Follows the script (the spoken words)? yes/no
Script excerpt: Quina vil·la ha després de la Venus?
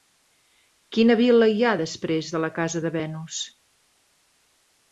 no